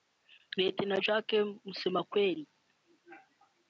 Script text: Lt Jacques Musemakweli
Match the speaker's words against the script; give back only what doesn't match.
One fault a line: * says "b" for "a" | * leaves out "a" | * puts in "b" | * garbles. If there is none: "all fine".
all fine